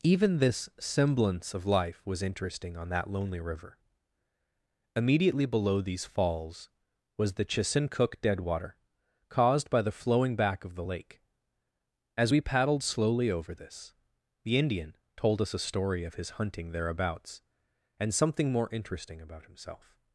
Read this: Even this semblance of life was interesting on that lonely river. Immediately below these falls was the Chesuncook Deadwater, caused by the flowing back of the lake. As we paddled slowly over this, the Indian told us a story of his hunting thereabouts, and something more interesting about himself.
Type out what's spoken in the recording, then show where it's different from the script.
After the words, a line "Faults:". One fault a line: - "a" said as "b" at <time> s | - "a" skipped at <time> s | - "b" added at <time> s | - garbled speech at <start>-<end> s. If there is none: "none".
Even this semblance of life was interesting on that lonely river. Immediately below these falls was the Chesuncook Deadwater, caused by the flowing back of the lake. As we paddled slowly over this, the Indian told us a story of his hunting thereabouts, and something more interesting about himself.
Faults:
none